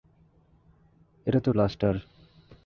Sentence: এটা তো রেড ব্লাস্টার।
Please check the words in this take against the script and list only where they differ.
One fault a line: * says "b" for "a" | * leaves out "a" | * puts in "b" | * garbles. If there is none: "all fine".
* leaves out "রেড"